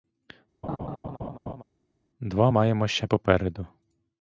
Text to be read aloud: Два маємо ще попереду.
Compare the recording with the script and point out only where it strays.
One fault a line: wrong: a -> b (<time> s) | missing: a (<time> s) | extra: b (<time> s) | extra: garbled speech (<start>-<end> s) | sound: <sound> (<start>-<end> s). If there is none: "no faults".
sound: laugh (0.6-1.6 s)